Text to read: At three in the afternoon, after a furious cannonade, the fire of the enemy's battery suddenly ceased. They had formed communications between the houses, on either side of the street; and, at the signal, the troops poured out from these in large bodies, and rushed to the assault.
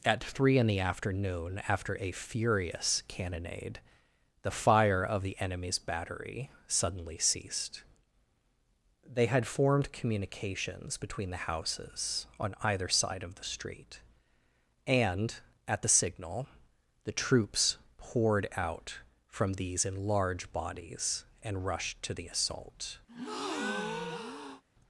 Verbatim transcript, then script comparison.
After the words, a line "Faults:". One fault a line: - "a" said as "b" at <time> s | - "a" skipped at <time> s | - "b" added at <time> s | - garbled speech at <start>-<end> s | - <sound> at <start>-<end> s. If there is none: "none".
At three in the afternoon, after a furious cannonade, the fire of the enemy's battery suddenly ceased. They had formed communications between the houses, on either side of the street; and, at the signal, the troops poured out from these in large bodies, and rushed to the assault.
Faults:
- breath at 23.1-24.6 s